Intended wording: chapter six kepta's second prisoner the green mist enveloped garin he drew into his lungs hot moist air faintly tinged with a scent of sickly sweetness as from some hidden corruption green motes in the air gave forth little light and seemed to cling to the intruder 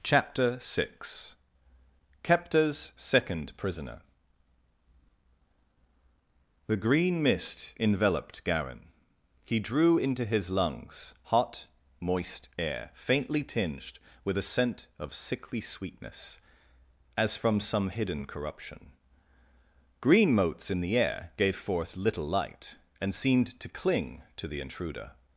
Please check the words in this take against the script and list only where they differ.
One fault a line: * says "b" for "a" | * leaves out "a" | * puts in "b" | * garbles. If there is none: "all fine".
all fine